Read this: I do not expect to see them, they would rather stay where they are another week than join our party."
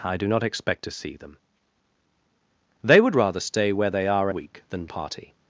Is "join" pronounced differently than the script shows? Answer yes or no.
yes